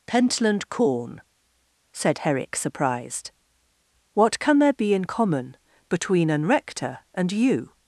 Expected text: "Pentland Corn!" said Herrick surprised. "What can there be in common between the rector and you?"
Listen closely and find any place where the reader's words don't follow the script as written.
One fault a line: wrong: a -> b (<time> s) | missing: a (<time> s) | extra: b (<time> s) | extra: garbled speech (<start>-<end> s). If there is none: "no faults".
wrong: the -> an (6.3 s)